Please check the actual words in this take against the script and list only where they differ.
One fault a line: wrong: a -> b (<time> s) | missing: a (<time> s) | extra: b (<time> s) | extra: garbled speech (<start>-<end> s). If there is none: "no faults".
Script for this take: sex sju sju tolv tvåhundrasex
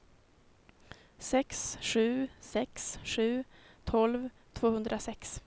extra: sex (2.4 s)